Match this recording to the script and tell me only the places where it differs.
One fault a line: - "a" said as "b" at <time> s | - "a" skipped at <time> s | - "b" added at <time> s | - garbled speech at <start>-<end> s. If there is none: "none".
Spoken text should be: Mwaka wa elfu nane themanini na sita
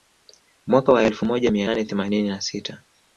- "moja mia" added at 1.2 s